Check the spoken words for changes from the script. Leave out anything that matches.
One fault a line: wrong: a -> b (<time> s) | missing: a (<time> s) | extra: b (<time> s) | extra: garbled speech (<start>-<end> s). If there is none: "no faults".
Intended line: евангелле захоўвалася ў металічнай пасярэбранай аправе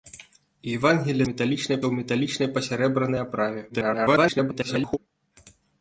wrong: захоўвалася -> металічнай (1.3 s)
extra: garbled speech (3.7-5.0 s)